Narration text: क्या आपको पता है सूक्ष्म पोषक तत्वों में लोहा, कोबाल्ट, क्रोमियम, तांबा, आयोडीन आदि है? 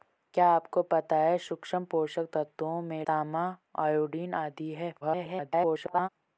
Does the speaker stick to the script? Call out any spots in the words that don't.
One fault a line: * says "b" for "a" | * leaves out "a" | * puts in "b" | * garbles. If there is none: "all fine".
* leaves out "लोहा कोबाल्ट क्रोमियम"
* garbles